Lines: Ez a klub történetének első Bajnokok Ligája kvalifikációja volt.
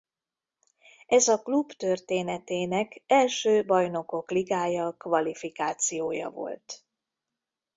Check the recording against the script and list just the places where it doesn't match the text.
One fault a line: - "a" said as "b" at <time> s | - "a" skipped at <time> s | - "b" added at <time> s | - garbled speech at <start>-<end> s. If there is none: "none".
none